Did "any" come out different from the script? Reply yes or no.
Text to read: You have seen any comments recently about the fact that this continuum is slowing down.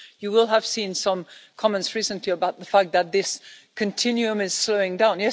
yes